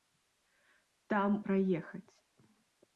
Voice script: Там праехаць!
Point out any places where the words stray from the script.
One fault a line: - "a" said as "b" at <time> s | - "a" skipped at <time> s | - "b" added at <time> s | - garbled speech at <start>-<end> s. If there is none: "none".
none